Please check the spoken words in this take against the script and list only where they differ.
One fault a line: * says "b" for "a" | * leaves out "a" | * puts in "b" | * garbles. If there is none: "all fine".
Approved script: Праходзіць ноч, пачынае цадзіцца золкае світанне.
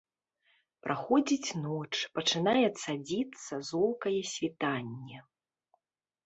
all fine